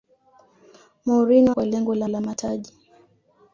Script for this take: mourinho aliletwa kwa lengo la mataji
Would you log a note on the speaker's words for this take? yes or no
yes